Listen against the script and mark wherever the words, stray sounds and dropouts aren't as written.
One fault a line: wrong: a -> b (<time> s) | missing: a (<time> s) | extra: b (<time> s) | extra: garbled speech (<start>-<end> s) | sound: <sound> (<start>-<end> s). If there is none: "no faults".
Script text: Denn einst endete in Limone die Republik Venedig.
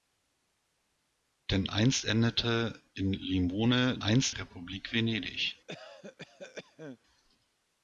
wrong: die -> einst (4.0 s)
sound: cough (5.7-7.0 s)